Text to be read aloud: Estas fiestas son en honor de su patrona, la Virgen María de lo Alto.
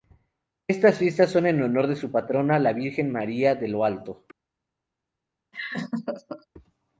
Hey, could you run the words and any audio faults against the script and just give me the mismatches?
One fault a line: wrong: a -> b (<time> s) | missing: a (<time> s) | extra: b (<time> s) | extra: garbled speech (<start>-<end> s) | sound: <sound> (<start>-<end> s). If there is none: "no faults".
sound: laugh (5.5-6.5 s)